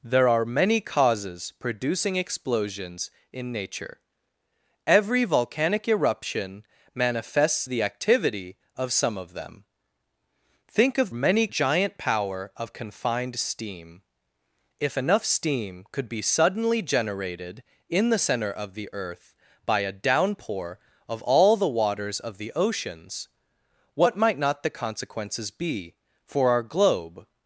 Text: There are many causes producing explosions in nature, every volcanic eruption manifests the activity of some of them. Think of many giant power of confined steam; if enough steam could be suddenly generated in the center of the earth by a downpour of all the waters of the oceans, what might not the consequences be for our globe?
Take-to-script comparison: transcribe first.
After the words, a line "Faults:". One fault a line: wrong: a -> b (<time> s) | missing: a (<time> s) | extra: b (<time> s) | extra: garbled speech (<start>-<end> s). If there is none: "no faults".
There are many causes producing explosions in nature, every volcanic eruption manifests the activity of some of them. Think of many giant power of confined steam; if enough steam could be suddenly generated in the center of the earth by a downpour of all the waters of the oceans, what might not the consequences be for our globe?
Faults:
no faults